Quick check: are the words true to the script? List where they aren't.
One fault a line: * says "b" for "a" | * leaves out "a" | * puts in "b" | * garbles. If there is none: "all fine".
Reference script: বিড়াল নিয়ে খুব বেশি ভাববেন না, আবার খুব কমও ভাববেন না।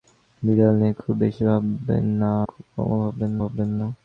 * leaves out "আবার"
* puts in "ভাববেন"